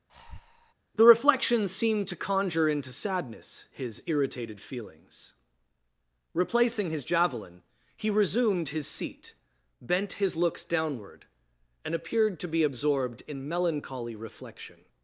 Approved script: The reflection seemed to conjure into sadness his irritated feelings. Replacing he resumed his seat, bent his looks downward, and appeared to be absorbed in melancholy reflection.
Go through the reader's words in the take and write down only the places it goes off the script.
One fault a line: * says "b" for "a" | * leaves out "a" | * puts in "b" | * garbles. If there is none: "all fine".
* puts in "his javelin"